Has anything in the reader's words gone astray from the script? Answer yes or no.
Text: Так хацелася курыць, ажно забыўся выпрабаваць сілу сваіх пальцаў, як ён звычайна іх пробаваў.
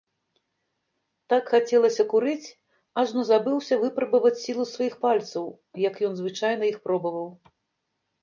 no